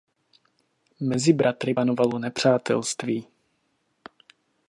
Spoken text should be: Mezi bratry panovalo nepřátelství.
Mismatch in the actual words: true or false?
false